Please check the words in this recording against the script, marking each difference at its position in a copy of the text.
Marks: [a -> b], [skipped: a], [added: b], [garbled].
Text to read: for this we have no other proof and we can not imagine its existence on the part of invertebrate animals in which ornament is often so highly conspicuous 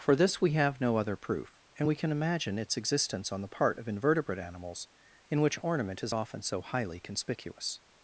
for this we have no other proof and we can [skipped: not] imagine its existence on the part of invertebrate animals in which ornament is often so highly conspicuous